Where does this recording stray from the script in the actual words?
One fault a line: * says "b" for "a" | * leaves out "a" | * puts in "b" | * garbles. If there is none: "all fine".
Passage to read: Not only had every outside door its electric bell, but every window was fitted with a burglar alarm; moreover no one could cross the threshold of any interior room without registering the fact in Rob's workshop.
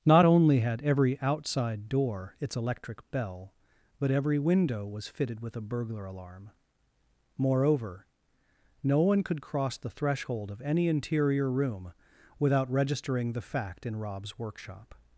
all fine